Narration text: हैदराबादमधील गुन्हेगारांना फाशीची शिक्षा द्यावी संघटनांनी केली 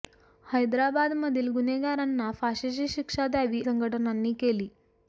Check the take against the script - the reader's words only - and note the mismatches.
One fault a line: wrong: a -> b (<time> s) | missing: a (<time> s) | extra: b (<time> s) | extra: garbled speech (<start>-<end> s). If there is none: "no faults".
no faults